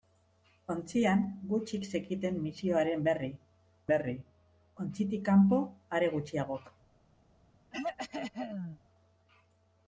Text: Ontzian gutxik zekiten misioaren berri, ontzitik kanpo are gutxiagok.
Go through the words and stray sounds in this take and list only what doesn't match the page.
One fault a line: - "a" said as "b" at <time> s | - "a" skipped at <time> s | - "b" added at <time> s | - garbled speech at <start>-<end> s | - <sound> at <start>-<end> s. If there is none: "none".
- "berri" added at 3.9 s
- throat clearing at 7.7-8.8 s